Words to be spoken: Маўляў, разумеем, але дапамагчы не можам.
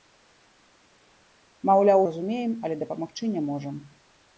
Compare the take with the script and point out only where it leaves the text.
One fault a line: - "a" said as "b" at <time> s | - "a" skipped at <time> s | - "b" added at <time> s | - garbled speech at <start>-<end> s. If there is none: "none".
none